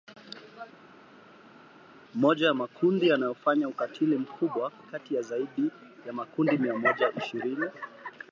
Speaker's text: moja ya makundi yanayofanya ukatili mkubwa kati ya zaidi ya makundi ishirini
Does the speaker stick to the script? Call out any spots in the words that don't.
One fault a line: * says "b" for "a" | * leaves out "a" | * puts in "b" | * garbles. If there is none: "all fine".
* puts in "mia moja"